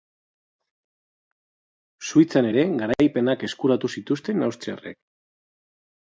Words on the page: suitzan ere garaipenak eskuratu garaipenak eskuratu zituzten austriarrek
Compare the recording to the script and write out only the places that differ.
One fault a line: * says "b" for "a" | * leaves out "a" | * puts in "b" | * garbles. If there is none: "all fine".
* leaves out "garaipenak eskuratu"